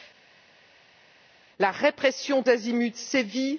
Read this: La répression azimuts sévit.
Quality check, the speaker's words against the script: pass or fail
pass